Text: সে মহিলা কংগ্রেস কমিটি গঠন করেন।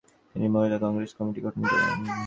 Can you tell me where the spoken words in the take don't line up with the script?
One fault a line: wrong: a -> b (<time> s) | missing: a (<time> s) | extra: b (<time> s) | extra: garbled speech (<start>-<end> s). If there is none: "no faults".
wrong: সে -> তিনি (0.3 s)